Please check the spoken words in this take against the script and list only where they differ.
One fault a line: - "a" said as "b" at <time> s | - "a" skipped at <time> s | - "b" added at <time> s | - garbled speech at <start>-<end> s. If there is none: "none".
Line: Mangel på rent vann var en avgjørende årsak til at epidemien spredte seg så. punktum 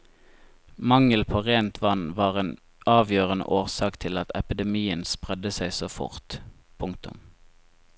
- "fort" added at 6.0 s